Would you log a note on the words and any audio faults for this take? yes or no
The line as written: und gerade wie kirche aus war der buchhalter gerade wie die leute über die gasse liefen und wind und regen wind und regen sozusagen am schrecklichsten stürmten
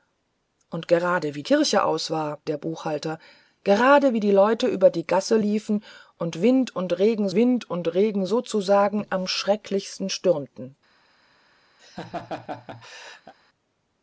yes